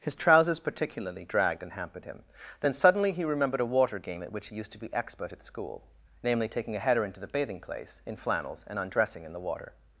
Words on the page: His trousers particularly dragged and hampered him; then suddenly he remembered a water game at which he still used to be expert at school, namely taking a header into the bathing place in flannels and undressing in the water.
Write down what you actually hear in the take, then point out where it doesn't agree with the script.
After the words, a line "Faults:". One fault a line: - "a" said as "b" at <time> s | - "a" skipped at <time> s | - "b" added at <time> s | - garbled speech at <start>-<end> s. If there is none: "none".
His trousers particularly dragged and hampered him; then suddenly he remembered a water game at which he used to be expert at school, namely taking a header into the bathing place in flannels and undressing in the water.
Faults:
- "still" skipped at 4.5 s